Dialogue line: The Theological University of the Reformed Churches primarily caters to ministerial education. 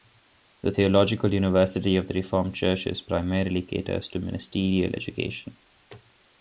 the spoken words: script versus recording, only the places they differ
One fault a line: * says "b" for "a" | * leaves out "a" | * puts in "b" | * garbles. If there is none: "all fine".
all fine